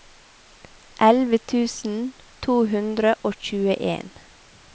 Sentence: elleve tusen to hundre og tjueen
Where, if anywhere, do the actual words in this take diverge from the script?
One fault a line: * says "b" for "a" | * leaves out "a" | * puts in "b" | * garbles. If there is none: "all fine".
all fine